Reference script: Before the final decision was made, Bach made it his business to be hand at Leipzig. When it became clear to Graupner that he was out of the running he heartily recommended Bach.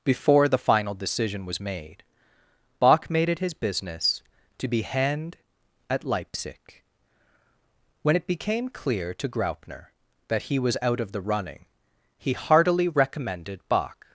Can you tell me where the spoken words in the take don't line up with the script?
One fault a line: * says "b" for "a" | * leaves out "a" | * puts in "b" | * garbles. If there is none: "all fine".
all fine